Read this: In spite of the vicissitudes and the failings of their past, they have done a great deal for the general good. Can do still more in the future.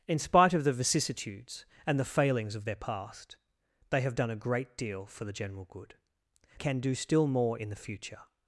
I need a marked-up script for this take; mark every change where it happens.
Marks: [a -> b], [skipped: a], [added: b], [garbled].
In spite of the vicissitudes and the failings of their past, they have done a great deal for the general good. Can do still more in the future.